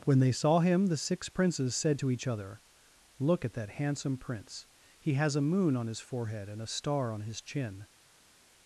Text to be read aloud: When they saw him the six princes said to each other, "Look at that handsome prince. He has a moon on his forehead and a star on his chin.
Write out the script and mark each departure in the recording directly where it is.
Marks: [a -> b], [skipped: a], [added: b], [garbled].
When they saw him the six princes said to each other, "Look at that handsome prince. He has a moon on his forehead and a star on his chin.